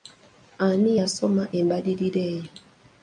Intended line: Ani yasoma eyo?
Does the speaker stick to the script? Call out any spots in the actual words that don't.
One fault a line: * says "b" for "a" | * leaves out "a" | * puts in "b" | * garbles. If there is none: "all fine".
* puts in "embalirira"